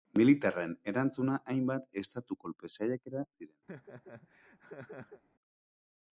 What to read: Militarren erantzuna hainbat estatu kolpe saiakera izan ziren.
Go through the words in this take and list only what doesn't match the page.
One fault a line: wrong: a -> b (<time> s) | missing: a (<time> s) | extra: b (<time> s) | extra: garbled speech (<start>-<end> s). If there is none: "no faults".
missing: izan (3.2 s)